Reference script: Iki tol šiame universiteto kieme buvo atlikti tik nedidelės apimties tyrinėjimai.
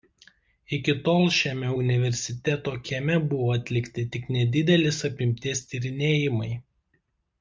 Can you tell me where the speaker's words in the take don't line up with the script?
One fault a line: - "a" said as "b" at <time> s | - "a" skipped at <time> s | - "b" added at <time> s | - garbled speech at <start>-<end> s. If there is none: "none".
none